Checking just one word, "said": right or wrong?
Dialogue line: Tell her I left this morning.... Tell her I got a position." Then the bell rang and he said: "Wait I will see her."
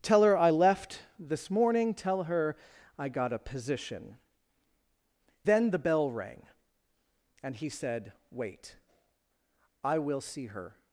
right